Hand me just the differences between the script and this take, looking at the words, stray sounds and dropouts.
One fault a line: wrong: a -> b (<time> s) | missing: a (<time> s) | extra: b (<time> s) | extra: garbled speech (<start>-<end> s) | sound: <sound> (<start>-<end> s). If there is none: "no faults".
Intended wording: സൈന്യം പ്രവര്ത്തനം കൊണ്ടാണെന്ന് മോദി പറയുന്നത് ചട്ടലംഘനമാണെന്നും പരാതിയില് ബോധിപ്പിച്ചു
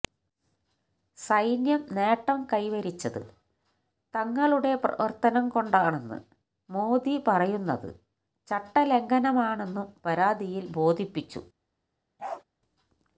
extra: നേട്ടം കൈവരിച്ചത് തങ്ങളുടെ (1.9 s)
sound: bark (12.2-12.4 s)